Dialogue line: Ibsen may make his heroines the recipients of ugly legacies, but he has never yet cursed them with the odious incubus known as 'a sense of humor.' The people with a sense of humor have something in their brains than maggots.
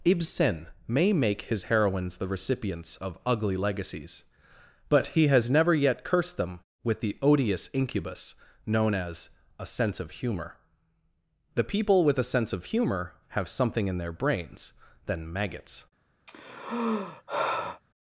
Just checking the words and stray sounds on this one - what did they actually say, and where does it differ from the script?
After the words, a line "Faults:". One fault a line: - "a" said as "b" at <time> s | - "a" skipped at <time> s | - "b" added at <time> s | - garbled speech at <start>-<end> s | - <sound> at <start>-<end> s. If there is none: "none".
Ibsen may make his heroines the recipients of ugly legacies, but he has never yet cursed them with the odious incubus known as 'a sense of humor.' The people with a sense of humor have something in their brains than maggots.
Faults:
- sigh at 16.3-17.8 s